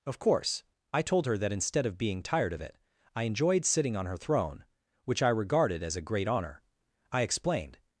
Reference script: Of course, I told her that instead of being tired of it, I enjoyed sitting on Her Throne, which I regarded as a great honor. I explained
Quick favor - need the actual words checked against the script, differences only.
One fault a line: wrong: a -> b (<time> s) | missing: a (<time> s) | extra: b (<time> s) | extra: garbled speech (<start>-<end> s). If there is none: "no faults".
no faults